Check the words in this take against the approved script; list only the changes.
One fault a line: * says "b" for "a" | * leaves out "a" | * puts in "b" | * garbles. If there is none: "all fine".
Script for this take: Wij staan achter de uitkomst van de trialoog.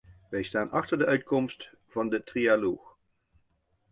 all fine